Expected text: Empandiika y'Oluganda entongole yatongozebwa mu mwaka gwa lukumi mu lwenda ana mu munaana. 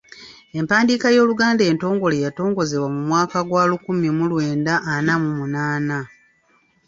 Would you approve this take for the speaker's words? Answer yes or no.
yes